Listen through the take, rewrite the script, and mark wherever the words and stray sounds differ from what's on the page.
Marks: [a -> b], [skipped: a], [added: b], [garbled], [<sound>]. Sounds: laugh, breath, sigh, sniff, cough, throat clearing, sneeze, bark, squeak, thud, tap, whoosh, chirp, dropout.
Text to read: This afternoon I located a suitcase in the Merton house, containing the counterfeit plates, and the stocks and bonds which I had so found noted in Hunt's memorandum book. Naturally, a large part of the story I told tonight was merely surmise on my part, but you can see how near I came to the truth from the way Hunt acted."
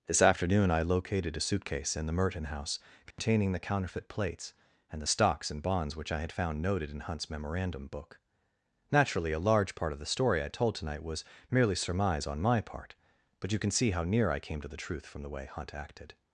This afternoon I located a suitcase in the Merton house, containing [dropout] the counterfeit plates, and the stocks and bonds which I had [skipped: so] found noted in Hunt's memorandum book. Naturally, a large part of the story I told tonight was merely surmise on my part, but you can see how near I came to the truth from the way Hunt acted."